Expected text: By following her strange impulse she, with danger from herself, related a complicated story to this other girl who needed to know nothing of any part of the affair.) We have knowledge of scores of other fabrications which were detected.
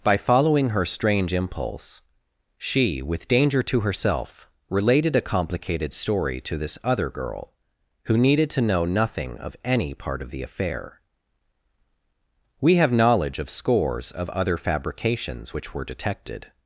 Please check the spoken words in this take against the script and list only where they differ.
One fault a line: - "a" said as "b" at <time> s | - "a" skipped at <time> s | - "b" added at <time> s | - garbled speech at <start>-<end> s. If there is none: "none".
- "from" said as "to" at 3.6 s